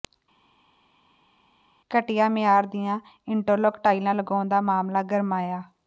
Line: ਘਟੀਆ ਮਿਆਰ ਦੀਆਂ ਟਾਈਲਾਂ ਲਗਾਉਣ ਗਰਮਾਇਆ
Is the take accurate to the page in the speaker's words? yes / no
no